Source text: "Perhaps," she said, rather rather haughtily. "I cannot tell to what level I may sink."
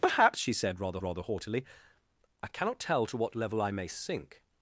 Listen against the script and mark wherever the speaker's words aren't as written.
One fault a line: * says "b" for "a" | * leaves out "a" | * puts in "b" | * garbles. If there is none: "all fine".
all fine